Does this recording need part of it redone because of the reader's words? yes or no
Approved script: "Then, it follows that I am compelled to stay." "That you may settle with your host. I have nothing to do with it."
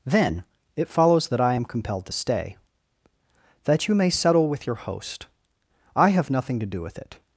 no